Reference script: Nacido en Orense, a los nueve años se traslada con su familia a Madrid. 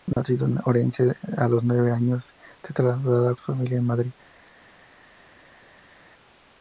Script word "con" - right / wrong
wrong